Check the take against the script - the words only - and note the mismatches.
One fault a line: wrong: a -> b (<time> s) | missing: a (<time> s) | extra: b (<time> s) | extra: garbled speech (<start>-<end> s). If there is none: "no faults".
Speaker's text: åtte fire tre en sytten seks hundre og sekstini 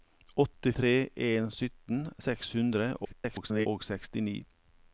missing: fire (0.7 s)
extra: garbled speech (3.0-3.7 s)